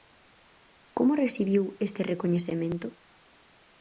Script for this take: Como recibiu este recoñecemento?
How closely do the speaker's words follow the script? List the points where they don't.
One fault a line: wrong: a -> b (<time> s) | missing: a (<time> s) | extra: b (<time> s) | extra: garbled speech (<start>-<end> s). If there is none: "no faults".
no faults